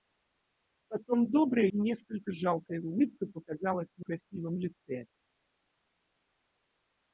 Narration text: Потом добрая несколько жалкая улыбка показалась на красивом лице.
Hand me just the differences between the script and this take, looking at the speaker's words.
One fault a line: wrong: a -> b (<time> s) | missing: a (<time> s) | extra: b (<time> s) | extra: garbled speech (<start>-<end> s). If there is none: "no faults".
no faults